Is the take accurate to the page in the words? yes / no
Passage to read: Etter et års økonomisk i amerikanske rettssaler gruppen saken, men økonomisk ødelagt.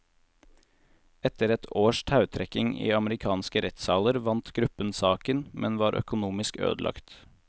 no